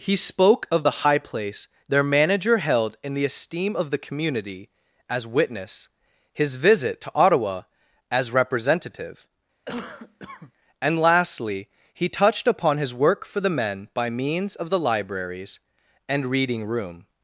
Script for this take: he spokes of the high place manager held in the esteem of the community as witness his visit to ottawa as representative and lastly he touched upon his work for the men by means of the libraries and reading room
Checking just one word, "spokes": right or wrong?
wrong